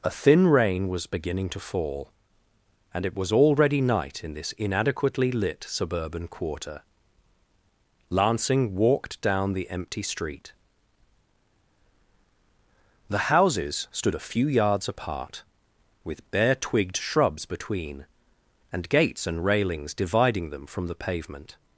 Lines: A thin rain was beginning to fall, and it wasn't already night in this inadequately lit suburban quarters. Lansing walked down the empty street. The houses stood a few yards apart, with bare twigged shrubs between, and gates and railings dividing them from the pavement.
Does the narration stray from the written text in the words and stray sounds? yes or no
yes